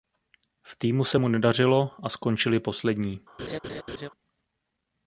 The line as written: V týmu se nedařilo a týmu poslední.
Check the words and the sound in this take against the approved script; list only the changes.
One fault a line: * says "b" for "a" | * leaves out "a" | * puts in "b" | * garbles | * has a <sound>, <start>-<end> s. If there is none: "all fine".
* puts in "mu"
* says "skončili" for "týmu"
* has a laugh, 3.4-4.1 s